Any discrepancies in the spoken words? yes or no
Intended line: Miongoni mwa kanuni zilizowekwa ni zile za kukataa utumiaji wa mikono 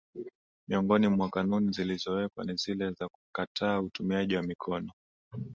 no